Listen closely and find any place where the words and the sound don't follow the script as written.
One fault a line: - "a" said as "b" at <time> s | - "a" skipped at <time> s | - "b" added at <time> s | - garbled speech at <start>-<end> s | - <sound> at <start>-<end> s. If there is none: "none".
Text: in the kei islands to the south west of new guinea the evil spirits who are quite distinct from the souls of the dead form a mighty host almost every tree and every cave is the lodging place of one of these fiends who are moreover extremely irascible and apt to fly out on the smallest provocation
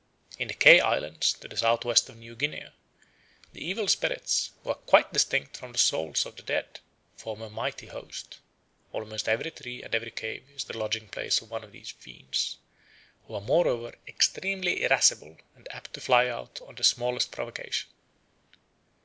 none